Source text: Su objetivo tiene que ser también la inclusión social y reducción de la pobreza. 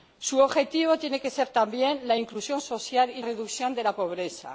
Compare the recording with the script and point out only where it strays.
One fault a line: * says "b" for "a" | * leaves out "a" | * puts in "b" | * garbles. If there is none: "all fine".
all fine